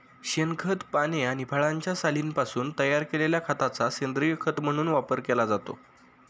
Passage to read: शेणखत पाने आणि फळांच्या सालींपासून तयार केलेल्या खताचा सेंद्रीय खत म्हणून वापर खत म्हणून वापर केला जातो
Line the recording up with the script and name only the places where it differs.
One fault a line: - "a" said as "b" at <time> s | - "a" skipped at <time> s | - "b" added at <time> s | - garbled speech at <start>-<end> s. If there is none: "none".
- "खत म्हणून वापर" skipped at 5.2 s